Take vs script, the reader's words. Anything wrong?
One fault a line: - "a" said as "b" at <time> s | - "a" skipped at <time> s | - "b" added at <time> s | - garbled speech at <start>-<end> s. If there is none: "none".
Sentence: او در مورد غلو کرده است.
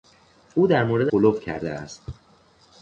none